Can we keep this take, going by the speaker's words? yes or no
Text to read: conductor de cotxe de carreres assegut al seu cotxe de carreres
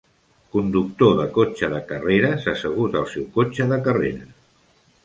yes